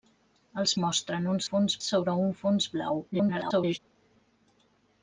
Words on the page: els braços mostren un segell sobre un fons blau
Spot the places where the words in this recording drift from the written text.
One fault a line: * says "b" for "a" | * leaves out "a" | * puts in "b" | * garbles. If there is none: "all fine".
* leaves out "braços"
* says "fons" for "segell"
* garbles